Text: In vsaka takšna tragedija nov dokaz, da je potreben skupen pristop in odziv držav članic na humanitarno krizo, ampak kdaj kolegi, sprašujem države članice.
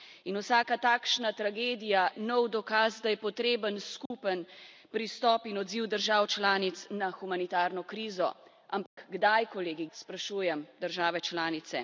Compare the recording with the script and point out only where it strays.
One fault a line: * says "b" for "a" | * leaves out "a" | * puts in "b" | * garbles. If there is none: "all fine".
all fine